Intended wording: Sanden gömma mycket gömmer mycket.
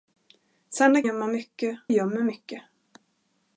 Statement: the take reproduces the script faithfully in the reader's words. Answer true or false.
true